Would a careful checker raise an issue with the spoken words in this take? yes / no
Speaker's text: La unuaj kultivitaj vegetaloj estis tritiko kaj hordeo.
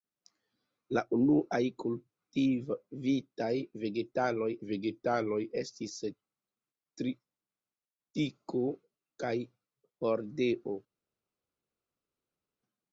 yes